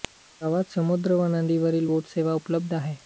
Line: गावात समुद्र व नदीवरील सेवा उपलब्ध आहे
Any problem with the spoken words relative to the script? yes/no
yes